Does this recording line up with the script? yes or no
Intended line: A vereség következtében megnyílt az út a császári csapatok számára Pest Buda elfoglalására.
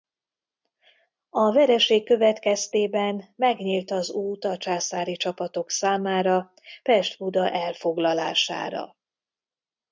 yes